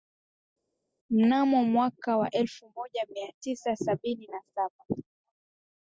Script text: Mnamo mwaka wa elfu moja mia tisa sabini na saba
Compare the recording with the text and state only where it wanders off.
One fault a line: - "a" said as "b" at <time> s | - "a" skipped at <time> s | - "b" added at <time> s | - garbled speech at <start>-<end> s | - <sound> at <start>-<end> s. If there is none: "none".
none